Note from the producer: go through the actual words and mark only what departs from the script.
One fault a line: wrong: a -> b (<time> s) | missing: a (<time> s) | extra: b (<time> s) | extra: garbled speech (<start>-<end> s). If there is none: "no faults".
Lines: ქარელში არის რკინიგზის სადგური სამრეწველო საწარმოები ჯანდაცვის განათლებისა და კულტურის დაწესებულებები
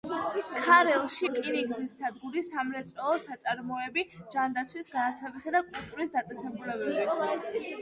missing: არის (1.3 s)